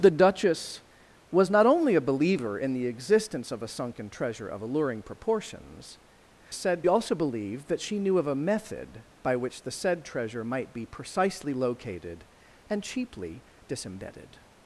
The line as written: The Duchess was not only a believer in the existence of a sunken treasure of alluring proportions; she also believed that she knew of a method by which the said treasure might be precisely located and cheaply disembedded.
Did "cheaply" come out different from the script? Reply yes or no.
no